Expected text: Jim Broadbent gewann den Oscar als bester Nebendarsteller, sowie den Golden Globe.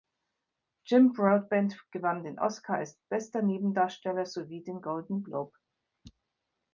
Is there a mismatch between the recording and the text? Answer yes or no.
no